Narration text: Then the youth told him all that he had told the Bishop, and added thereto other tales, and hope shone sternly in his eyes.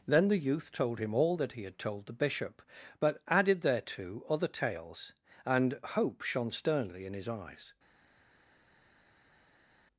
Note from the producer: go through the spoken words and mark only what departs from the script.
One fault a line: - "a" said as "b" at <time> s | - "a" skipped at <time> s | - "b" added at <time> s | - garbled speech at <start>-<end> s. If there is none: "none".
- "and" said as "but" at 3.0 s